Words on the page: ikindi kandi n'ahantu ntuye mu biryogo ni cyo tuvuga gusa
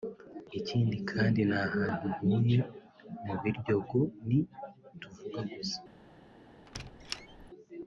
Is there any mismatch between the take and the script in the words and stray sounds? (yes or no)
yes